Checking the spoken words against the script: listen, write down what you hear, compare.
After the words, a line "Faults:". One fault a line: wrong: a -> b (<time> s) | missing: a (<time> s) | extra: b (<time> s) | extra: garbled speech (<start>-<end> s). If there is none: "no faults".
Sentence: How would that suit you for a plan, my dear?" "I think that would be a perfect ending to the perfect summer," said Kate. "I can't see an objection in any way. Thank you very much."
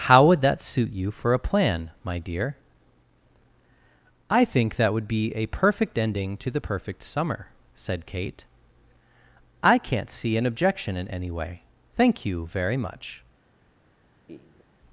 How would that suit you for a plan, my dear?" "I think that would be a perfect ending to the perfect summer," said Kate. "I can't see an objection in any way. Thank you very much."
Faults:
no faults